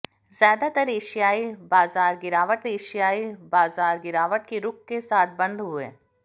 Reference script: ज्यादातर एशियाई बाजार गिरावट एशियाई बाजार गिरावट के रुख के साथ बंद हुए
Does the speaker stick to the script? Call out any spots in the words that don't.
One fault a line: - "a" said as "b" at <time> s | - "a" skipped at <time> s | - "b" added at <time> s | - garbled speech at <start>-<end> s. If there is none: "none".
none